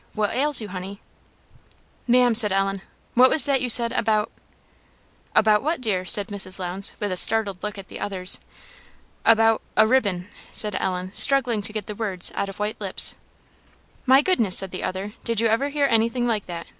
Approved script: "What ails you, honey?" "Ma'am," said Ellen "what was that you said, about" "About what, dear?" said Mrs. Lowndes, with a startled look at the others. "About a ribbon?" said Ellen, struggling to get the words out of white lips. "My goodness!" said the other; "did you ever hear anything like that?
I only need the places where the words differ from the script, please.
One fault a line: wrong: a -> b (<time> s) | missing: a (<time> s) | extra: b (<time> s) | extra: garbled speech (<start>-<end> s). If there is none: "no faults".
no faults